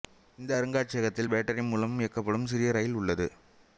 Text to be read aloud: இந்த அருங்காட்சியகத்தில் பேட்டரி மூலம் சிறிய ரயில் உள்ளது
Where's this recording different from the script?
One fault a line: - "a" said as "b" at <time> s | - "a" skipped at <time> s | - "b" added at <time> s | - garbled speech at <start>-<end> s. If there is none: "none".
- "இயக்கப்படும்" added at 2.0 s